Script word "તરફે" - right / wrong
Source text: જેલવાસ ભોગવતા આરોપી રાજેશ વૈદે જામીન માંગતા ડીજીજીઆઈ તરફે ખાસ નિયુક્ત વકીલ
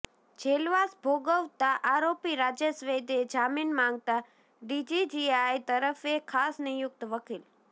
right